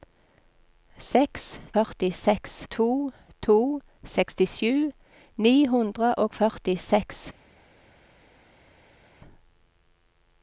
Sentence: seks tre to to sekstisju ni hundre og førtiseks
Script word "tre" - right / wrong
wrong